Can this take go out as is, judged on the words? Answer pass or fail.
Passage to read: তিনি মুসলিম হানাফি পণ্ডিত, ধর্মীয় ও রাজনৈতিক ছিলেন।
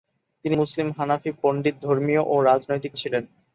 pass